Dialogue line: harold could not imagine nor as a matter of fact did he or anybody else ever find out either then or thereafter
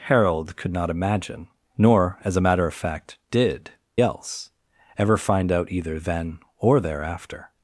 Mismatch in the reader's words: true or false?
true